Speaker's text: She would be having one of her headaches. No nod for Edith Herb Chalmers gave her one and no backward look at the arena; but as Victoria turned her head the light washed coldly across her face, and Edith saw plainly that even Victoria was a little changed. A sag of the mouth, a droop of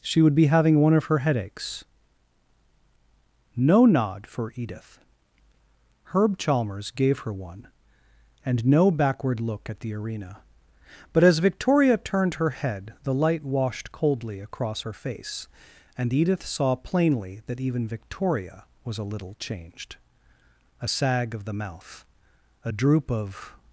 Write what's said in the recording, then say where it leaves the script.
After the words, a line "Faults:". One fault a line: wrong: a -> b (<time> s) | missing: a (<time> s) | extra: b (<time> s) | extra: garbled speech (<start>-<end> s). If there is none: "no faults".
She would be having one of her headaches. No nod for Edith Herb Chalmers gave her one and no backward look at the arena; but as Victoria turned her head the light washed coldly across her face, and Edith saw plainly that even Victoria was a little changed. A sag of the mouth, a droop of
Faults:
no faults